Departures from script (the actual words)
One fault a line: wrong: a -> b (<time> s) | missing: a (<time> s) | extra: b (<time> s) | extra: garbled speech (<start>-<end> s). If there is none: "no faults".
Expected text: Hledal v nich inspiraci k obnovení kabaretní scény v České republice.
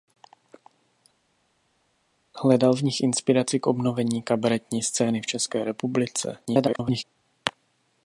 extra: garbled speech (6.5-7.0 s)